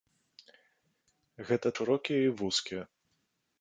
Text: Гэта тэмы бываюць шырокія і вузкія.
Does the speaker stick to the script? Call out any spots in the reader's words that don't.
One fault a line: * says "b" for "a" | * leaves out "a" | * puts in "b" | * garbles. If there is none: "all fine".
* leaves out "тэмы бываюць"